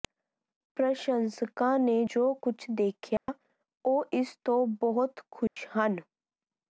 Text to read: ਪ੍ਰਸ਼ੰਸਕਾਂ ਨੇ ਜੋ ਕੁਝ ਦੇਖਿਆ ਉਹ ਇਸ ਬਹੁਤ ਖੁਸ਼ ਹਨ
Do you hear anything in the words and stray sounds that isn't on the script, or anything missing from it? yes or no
yes